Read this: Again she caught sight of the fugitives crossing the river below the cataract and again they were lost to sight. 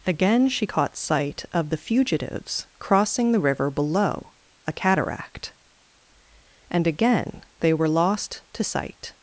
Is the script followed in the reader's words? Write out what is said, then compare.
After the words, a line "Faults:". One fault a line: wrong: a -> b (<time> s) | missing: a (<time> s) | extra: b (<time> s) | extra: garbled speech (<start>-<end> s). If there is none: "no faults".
Again she caught sight of the fugitives crossing the river below a cataract and again they were lost to sight.
Faults:
wrong: the -> a (4.7 s)